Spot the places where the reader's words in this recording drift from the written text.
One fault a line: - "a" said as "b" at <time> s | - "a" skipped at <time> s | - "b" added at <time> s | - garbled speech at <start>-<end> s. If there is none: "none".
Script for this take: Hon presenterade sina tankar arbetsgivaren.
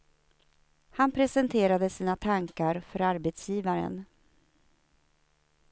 - "Hon" said as "Han" at 0.9 s
- "för" added at 2.8 s